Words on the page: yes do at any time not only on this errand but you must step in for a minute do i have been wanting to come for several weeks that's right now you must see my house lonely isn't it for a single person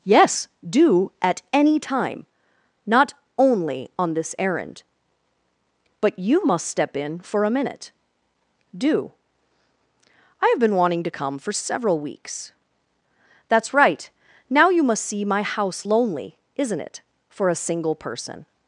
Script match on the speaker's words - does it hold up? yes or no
yes